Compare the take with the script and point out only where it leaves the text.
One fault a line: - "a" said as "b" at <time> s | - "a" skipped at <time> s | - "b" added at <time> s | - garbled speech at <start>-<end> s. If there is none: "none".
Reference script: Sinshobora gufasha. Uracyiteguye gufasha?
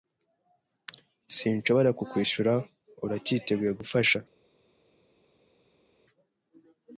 - "gufasha" said as "kukwishura" at 2.0 s